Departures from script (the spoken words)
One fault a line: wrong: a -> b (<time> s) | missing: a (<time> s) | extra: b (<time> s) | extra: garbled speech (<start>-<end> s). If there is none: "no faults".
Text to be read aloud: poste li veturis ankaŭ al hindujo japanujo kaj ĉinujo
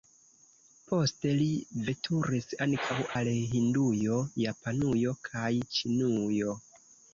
no faults